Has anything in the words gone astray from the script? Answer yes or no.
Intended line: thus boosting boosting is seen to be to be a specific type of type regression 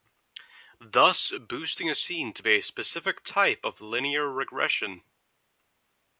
yes